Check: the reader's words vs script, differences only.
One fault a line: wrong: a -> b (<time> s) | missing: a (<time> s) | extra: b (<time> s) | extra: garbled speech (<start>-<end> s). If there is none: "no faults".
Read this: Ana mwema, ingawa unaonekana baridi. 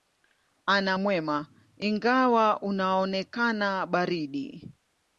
no faults